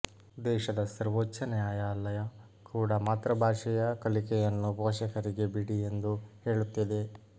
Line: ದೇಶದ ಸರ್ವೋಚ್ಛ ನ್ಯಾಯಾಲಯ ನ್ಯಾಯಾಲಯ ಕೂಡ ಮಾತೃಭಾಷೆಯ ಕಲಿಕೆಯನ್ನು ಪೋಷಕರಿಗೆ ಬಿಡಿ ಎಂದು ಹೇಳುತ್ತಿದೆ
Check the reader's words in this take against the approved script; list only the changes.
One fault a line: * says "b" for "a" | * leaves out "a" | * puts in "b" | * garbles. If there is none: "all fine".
* leaves out "ನ್ಯಾಯಾಲಯ"